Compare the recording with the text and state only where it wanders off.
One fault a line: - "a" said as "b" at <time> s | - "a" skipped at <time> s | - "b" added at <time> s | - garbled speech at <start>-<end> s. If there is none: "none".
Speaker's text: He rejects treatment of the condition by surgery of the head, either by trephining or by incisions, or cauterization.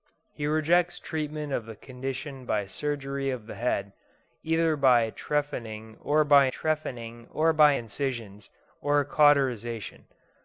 - "trephining or by" added at 6.5 s